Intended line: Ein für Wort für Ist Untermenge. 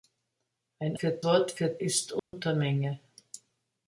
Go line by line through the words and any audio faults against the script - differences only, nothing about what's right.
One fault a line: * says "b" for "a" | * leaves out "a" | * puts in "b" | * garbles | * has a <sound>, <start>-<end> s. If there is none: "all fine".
* has a dropout, 2.2-2.3 s